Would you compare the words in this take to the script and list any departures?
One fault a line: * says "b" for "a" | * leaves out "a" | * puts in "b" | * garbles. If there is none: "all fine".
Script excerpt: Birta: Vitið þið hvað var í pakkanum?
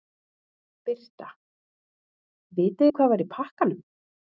all fine